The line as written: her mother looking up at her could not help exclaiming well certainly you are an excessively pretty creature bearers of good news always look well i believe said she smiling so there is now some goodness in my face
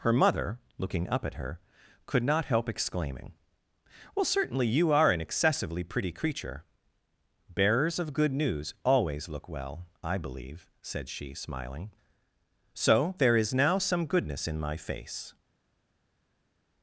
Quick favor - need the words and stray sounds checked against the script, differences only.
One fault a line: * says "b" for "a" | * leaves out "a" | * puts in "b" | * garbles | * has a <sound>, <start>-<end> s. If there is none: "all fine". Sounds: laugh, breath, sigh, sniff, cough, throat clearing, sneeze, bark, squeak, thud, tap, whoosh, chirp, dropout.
all fine